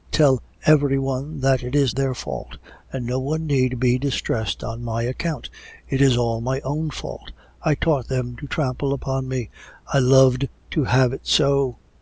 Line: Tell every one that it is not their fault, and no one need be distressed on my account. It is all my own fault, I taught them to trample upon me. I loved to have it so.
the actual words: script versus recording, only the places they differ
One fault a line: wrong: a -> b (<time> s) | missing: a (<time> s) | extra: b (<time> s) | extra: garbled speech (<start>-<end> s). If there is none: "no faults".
missing: not (1.9 s)